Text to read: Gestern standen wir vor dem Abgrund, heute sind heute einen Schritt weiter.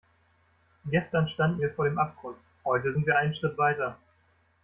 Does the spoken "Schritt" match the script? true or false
true